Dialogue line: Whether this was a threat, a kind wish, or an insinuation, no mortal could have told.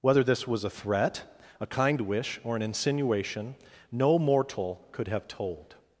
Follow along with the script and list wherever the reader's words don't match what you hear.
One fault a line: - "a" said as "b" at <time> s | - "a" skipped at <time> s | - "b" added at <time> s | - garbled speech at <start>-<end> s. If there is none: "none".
none